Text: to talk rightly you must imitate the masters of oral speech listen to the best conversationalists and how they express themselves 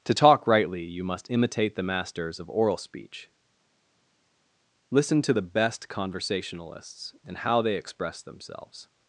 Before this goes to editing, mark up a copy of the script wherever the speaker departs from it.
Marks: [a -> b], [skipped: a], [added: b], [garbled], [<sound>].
to talk rightly you must imitate the masters of oral speech listen to the best conversationalists and how they express themselves